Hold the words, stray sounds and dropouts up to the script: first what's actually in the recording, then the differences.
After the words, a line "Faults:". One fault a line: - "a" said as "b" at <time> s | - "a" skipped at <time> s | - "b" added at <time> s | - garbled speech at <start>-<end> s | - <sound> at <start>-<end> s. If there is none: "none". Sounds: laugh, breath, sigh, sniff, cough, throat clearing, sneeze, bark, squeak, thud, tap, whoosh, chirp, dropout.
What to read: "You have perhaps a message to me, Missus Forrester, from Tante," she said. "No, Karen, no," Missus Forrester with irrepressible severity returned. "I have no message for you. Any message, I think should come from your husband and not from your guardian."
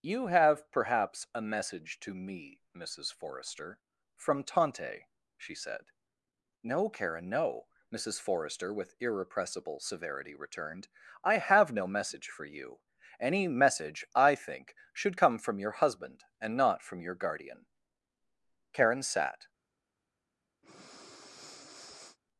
"You have perhaps a message to me, Missus Forrester, from Tante," she said. "No, Karen, no," Missus Forrester with irrepressible severity returned. "I have no message for you. Any message, I think should come from your husband and not from your guardian." Karen sat
Faults:
- "Karen sat" added at 18.7 s
- breath at 20.6-22.2 s